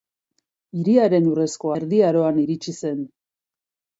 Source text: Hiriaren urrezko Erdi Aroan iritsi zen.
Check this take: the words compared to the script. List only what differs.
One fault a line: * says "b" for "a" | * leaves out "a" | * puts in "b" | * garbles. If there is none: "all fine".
all fine